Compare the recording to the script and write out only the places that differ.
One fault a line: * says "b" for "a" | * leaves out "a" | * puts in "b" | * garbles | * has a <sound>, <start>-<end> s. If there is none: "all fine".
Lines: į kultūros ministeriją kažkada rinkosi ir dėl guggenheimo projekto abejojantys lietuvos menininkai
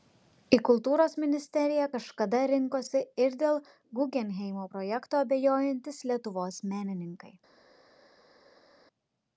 all fine